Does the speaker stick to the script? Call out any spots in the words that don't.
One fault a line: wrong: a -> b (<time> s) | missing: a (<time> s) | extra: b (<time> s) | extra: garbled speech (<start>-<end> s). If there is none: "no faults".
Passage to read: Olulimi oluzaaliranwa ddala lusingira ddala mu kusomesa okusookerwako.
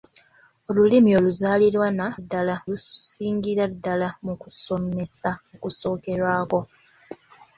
no faults